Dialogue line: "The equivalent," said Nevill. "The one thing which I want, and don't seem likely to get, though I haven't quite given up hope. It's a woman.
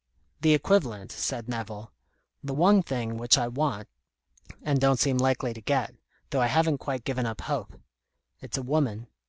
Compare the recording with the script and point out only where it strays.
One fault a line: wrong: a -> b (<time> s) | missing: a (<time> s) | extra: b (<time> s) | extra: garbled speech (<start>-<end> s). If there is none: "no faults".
no faults